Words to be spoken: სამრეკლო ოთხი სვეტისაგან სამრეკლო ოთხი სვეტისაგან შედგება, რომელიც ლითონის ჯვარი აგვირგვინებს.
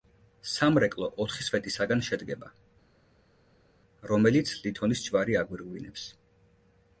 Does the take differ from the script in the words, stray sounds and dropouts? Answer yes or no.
yes